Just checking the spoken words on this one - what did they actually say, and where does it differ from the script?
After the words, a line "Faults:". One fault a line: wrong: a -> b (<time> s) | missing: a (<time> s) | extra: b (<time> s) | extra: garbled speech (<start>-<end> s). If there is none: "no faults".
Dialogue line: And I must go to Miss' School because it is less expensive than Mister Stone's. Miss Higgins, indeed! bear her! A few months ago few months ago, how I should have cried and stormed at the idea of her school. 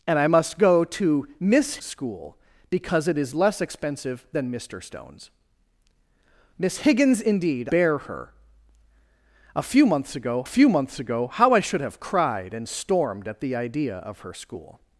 And I must go to Miss' School because it is less expensive than Mister Stone's. Miss Higgins, indeed! bear her! A few months ago few months ago, how I should have cried and stormed at the idea of her school.
Faults:
no faults